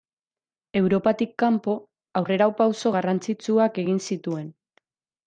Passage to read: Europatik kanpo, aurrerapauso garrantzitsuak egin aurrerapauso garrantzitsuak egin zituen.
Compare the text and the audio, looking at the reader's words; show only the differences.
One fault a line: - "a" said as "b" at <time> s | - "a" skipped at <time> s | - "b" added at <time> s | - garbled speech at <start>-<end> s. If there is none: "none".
- "aurrerapauso garrantzitsuak egin" skipped at 4.0 s